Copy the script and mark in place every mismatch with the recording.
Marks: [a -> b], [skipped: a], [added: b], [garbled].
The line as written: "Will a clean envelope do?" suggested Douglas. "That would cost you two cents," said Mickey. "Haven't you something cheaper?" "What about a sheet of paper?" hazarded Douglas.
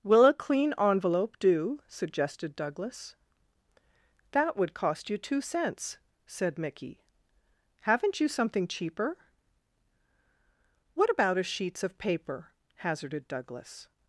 "Will a clean envelope do?" suggested Douglas. "That would cost you two cents," said Mickey. "Haven't you something cheaper?" "What about a [sheet -> sheets] of paper?" hazarded Douglas.